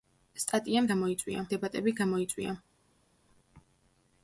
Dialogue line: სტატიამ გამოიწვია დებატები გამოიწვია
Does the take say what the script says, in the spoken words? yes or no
yes